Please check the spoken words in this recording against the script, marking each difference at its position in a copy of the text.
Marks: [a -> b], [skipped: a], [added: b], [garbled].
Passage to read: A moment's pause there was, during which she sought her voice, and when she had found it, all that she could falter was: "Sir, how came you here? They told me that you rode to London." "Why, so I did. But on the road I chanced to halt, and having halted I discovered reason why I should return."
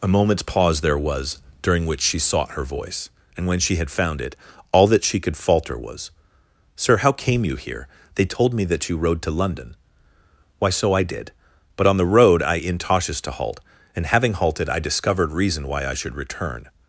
A moment's pause there was, during which she sought her voice, and when she had found it, all that she could falter was: "Sir, how came you here? They told me that you rode to London." "Why, so I did. But on the road I [chanced -> intoshes] to halt, and having halted I discovered reason why I should return."